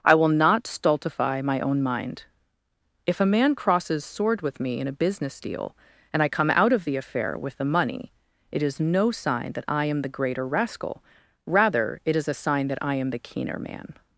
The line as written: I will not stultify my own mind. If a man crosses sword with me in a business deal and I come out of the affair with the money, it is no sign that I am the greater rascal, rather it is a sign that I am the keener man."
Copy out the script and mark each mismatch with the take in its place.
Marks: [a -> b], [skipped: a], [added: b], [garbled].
I will not stultify my own mind. If a man crosses sword with me in a business deal and I come out of the affair with the money, it is no sign that I am the greater rascal, rather it is a sign that I am the keener man."